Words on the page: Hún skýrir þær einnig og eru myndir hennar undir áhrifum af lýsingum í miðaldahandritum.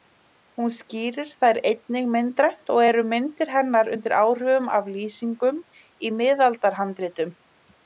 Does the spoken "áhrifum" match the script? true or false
true